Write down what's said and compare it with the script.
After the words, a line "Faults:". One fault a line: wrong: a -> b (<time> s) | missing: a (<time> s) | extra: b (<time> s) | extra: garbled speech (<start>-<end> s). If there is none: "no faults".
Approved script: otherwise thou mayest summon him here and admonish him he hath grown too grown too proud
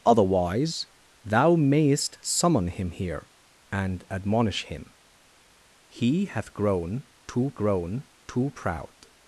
otherwise thou mayest summon him here and admonish him he hath grown too grown too proud
Faults:
no faults